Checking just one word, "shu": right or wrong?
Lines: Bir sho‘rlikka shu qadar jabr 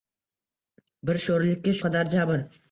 wrong